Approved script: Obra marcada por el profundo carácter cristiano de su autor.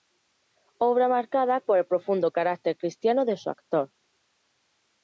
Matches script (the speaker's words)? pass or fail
pass